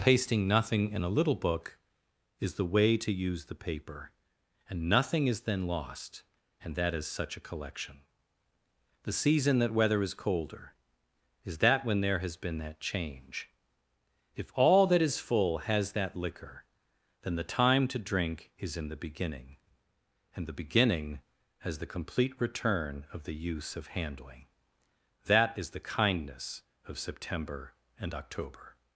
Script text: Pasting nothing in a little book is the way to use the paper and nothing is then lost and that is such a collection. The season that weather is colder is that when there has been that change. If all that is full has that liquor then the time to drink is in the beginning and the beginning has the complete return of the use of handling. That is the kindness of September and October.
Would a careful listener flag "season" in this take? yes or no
no